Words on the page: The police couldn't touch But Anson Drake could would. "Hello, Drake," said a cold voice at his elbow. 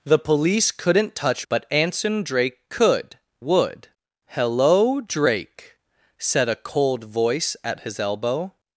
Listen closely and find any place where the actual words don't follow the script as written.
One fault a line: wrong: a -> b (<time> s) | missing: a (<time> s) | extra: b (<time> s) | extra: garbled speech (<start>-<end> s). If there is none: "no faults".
no faults